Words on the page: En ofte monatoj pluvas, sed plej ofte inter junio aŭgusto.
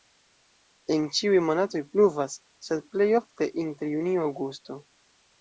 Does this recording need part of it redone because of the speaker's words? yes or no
yes